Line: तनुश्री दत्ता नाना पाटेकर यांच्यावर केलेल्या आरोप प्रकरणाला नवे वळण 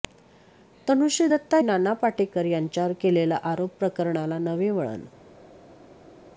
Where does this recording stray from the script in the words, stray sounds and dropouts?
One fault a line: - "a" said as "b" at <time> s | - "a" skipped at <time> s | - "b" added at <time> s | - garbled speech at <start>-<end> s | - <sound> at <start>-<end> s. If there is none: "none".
none